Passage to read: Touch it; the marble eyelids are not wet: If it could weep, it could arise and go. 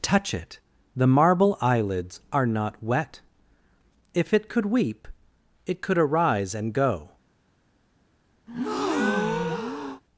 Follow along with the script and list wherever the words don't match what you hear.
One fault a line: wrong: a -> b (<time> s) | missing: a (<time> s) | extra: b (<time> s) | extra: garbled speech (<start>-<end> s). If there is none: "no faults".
no faults